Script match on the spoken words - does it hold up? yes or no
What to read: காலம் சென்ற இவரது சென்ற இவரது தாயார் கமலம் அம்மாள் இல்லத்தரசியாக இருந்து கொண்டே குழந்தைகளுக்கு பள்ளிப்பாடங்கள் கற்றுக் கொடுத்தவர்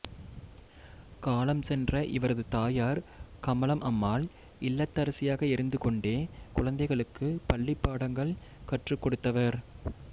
no